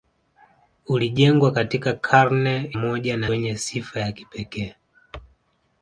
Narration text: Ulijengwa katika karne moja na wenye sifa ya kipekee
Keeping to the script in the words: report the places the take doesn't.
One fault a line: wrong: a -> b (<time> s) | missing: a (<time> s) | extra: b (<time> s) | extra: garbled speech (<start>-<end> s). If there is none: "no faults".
no faults